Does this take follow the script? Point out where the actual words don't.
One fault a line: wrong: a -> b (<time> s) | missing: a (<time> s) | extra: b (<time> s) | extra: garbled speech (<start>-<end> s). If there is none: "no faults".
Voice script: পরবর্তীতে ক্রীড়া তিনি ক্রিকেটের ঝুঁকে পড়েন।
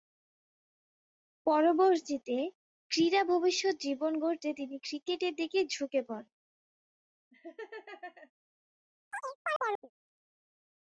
extra: ভবিষ্যৎ জীবন গড়তে (3.2 s)
extra: দিকে (5.4 s)